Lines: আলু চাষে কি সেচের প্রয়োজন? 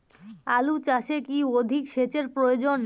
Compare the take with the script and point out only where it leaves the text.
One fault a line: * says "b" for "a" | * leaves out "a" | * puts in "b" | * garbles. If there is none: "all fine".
* puts in "অধিক"